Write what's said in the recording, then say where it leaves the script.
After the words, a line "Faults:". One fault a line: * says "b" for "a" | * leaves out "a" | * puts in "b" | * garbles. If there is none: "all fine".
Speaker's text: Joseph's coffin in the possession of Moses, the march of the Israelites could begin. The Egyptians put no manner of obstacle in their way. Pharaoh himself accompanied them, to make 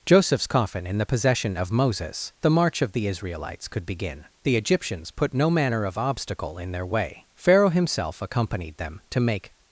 Joseph's coffin in the possession of Moses, the march of the Israelites could begin. The Egyptians put no manner of obstacle in their way. Pharaoh himself accompanied them, to make
Faults:
all fine